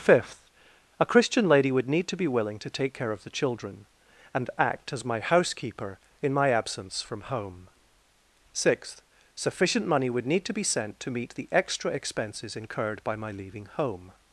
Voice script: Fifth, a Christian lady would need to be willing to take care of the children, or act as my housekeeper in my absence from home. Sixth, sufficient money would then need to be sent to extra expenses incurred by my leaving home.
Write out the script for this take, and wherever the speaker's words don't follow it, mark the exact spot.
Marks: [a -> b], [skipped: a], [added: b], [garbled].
Fifth, a Christian lady would need to be willing to take care of the children, [or -> and] act as my housekeeper in my absence from home. Sixth, sufficient money would [skipped: then] need to be sent to [added: meet the] extra expenses incurred by my leaving home.